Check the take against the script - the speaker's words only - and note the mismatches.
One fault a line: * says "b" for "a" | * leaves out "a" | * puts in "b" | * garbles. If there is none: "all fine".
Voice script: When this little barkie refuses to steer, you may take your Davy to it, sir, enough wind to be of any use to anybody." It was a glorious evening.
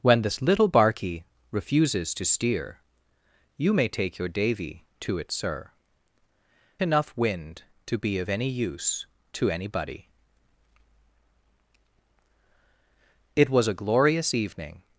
all fine